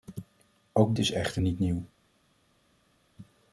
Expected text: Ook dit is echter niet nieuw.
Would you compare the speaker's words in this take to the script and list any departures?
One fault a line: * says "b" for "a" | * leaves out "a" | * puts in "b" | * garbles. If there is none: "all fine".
* leaves out "dit"